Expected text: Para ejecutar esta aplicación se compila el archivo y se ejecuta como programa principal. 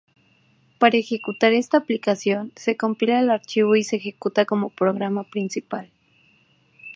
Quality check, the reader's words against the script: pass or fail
pass